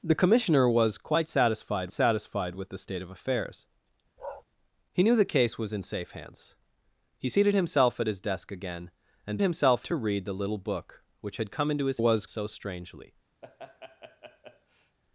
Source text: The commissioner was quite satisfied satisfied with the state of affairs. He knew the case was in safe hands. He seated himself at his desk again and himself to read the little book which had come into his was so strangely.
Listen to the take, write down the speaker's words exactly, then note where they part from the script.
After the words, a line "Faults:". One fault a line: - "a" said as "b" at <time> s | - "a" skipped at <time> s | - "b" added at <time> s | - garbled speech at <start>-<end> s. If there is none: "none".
The commissioner was quite satisfied satisfied with the state of affairs. He knew the case was in safe hands. He seated himself at his desk again and himself to read the little book which had come into his was so strangely.
Faults:
none